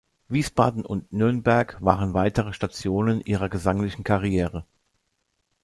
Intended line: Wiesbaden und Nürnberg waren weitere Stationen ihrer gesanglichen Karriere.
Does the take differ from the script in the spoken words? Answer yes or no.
no